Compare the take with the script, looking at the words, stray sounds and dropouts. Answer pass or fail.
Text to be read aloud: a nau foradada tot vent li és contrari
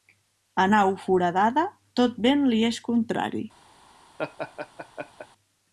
fail